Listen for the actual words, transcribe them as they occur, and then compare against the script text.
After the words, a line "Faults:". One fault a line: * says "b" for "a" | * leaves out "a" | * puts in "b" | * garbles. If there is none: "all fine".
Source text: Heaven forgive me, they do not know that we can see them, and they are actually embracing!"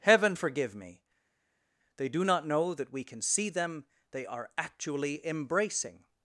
Heaven forgive me, they do not know that we can see them, they are actually embracing!"
Faults:
* leaves out "and"